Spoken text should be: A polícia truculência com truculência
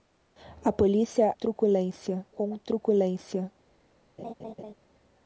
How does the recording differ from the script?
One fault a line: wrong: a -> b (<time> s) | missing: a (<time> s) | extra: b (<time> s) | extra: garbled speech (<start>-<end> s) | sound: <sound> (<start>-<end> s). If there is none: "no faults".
sound: laugh (4.2-4.7 s)